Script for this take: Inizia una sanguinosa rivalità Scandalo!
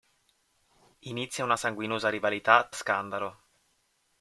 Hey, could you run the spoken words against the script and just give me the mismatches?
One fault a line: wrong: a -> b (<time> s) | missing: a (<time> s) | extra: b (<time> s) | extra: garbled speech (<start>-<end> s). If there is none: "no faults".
no faults